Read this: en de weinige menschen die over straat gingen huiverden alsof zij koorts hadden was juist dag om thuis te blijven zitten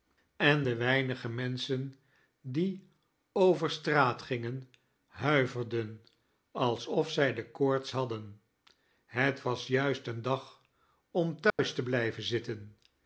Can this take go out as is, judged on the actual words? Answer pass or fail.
fail